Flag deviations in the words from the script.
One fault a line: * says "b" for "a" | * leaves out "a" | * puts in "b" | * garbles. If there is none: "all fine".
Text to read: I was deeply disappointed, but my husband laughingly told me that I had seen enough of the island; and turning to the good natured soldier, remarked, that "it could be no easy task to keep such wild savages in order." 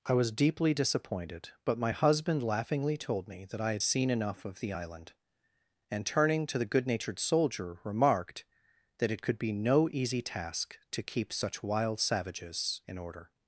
all fine